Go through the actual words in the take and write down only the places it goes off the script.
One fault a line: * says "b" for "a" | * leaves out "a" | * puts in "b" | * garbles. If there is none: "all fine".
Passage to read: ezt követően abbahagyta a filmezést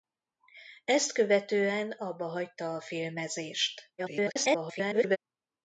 * garbles